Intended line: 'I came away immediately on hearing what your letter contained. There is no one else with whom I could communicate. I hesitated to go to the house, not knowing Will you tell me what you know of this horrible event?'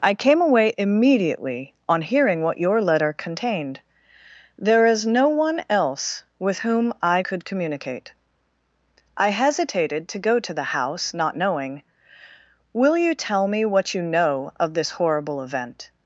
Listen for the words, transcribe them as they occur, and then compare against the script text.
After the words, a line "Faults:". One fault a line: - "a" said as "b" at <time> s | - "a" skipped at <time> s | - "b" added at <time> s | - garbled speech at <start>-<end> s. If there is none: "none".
'I came away immediately on hearing what your letter contained. There is no one else with whom I could communicate. I hesitated to go to the house, not knowing Will you tell me what you know of this horrible event?'
Faults:
none